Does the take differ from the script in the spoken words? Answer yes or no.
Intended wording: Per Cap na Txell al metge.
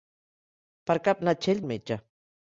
no